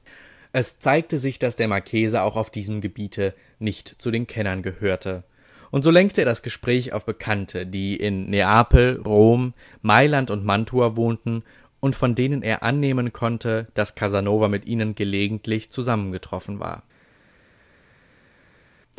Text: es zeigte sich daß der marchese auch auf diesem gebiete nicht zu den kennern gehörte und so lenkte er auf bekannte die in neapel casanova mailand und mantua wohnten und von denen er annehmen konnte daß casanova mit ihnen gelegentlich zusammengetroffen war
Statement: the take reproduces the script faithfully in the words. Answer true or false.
false